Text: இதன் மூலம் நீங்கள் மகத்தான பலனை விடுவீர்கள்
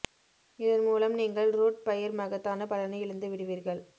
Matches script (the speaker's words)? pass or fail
fail